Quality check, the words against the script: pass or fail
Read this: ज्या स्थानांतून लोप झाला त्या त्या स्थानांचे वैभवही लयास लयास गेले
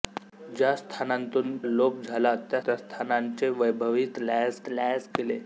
pass